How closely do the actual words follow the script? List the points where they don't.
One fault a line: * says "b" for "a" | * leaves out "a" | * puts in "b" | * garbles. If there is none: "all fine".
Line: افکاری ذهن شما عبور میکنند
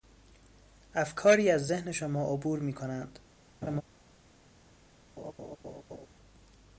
* puts in "از"